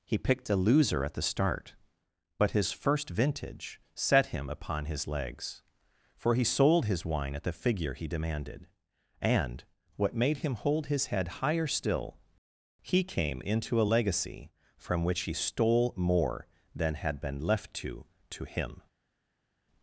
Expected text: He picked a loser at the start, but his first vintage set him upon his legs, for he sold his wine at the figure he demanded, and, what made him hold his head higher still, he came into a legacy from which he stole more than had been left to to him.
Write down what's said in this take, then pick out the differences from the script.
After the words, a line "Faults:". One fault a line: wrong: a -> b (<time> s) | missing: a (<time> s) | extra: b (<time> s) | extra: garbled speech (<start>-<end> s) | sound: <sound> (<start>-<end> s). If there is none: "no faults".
He picked a loser at the start, but his first vintage set him upon his legs, for he sold his wine at the figure he demanded, and, what made him hold his head higher still, he came into a legacy from which he stole more than had been left to to him.
Faults:
no faults